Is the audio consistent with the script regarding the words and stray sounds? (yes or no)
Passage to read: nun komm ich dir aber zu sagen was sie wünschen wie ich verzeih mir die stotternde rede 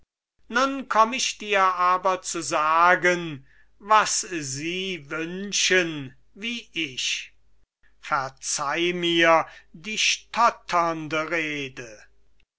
yes